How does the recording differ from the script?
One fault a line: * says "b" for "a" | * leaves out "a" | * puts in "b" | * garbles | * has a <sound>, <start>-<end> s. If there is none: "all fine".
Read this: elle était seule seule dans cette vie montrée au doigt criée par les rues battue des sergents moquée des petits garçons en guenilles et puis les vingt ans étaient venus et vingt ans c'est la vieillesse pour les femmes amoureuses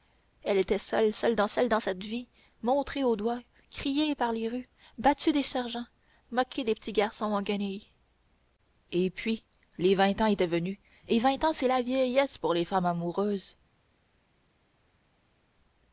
* puts in "seule dans"